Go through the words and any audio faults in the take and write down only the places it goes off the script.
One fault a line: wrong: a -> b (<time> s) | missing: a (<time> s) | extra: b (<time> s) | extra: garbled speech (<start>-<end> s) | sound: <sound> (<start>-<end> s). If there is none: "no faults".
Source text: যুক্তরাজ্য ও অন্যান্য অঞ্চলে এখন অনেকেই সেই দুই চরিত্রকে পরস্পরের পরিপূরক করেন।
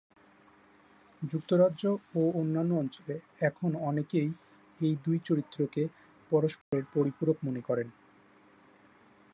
wrong: সেই -> এই (4.8 s)
sound: dropout (6.6-6.7 s)
extra: মনে (7.5 s)